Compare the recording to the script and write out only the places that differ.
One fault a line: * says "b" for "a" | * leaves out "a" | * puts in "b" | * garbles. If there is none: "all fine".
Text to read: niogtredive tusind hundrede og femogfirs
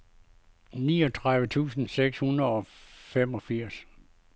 * puts in "seks"